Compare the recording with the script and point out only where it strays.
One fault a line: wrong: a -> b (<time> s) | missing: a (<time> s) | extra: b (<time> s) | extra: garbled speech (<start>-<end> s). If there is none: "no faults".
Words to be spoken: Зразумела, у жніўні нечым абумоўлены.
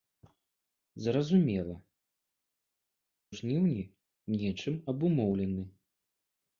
no faults